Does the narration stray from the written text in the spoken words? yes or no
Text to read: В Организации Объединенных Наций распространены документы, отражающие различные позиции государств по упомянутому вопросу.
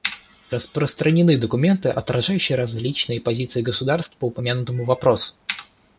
yes